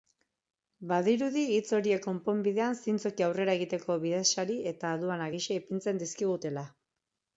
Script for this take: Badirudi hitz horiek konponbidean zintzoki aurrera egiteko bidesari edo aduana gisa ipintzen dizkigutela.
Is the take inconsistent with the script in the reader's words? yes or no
yes